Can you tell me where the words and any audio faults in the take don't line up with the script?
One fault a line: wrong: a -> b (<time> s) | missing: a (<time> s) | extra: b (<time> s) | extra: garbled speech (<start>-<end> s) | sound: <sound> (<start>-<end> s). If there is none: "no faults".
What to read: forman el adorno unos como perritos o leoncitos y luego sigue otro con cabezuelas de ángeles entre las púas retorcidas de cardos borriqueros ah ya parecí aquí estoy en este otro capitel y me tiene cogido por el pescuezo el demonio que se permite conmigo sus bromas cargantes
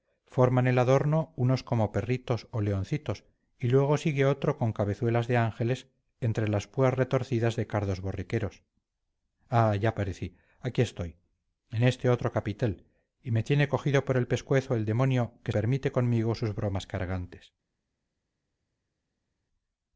missing: se (15.5 s)